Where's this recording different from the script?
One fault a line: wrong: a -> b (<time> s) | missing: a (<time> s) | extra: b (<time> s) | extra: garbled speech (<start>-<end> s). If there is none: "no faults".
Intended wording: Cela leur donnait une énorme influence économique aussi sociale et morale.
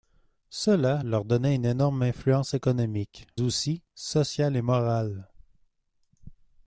no faults